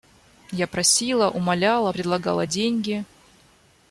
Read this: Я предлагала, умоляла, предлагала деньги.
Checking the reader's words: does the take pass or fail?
fail